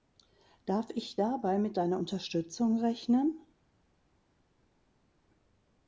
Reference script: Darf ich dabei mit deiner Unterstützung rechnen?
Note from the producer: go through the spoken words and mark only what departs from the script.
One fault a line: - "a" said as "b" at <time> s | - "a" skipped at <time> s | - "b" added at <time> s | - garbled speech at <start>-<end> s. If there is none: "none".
none